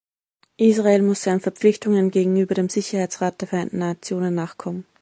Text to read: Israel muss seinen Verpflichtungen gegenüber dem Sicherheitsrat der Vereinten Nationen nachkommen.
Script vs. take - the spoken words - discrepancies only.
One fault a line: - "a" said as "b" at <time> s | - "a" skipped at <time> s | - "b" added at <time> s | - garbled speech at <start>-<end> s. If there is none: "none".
none